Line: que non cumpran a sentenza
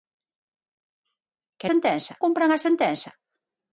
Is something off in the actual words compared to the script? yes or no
yes